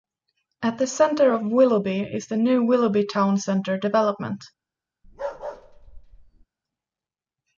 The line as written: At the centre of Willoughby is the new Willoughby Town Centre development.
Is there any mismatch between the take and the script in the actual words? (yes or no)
no